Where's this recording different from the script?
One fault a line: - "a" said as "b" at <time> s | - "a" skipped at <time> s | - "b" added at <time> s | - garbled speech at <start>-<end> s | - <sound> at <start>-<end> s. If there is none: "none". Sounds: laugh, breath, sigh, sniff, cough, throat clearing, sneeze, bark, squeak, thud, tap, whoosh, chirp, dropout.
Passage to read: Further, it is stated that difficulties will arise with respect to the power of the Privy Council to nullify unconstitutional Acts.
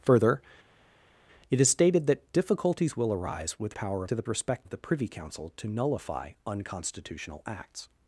- "respect" said as "power" at 3.7 s
- "power" said as "respect" at 4.3 s